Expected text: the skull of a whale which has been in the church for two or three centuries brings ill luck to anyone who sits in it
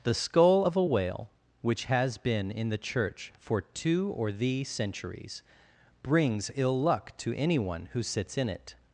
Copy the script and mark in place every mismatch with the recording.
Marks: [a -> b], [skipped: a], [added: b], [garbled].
the skull of a whale which has been in the church for two or [three -> thee] centuries brings ill luck to anyone who sits in it